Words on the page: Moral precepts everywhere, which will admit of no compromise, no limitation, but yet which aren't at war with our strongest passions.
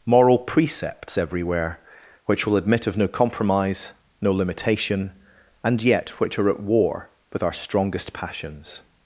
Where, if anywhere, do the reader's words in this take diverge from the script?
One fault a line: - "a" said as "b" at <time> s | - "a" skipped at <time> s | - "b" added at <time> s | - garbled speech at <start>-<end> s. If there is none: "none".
- "but" said as "and" at 5.6 s
- "aren't" said as "are" at 6.4 s